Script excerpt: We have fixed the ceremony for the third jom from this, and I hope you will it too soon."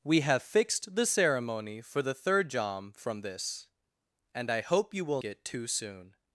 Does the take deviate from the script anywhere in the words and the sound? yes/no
no